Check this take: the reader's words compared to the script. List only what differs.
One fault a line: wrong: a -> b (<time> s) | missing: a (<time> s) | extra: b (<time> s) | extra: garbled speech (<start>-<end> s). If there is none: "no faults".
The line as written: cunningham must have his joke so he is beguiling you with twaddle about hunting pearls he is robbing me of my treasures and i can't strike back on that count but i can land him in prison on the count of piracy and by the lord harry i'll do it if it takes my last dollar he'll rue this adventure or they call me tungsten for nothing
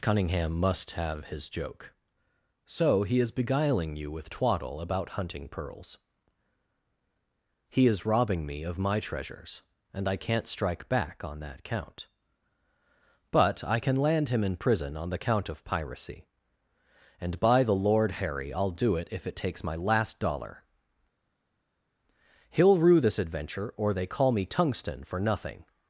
no faults